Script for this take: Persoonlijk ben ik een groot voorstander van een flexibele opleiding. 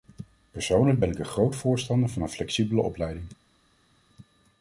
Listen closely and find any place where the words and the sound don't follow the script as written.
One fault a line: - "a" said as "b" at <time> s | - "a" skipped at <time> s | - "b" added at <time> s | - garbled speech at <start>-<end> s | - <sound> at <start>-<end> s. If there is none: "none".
none